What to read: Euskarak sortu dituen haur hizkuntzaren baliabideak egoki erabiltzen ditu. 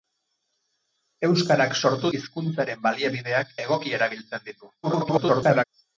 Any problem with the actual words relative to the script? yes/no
yes